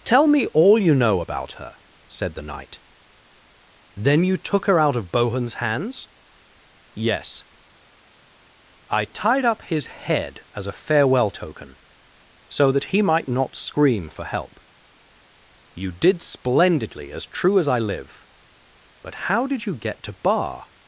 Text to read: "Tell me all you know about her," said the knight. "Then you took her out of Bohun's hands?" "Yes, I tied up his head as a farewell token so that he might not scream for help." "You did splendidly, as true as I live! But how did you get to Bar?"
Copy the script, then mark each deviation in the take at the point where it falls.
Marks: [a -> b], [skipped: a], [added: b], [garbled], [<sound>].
"Tell me all you know about her," said the knight. "Then you took her out of Bohun's hands?" "Yes, I tied up his head as a farewell token so that he might not scream for help." "You did splendidly, as true as I live! But how did you get to Bar?"